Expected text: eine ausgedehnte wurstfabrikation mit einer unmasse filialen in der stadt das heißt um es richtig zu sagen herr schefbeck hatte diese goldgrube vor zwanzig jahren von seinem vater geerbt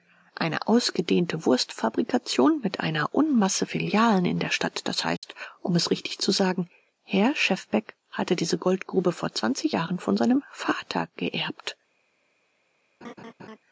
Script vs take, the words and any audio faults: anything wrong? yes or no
yes